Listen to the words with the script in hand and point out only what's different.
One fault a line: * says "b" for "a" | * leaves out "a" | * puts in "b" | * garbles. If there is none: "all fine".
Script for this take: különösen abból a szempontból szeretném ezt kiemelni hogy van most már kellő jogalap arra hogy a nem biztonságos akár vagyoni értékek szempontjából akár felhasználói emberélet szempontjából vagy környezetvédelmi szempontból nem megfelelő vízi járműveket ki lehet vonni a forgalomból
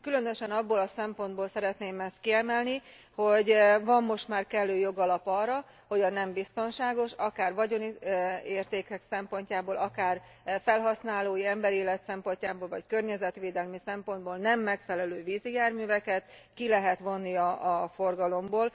all fine